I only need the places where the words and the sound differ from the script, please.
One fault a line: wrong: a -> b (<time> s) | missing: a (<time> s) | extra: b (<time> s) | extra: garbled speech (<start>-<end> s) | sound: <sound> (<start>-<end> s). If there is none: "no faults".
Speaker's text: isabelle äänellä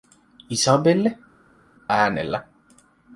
no faults